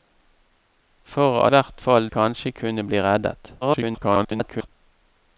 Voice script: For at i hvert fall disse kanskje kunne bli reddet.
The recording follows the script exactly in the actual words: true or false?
false